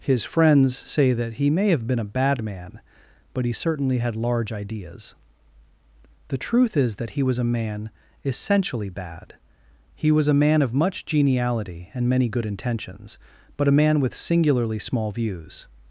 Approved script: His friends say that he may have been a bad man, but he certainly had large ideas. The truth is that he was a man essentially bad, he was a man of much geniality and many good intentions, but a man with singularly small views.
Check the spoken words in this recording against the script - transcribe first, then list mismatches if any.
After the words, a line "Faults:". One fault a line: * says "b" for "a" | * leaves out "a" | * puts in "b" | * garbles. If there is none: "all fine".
His friends say that he may have been a bad man, but he certainly had large ideas. The truth is that he was a man essentially bad, he was a man of much geniality and many good intentions, but a man with singularly small views.
Faults:
all fine